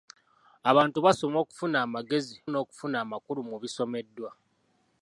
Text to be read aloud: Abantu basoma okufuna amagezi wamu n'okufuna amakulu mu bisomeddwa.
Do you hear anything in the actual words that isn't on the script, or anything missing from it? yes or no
yes